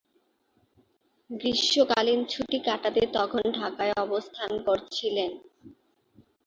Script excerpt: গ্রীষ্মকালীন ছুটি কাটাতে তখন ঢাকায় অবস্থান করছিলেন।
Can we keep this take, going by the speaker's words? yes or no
yes